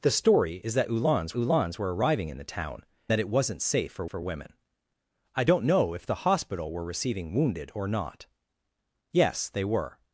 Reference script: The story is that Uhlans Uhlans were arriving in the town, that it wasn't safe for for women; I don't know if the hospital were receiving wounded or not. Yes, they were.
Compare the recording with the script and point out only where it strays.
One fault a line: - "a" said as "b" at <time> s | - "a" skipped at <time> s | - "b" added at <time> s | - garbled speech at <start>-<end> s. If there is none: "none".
none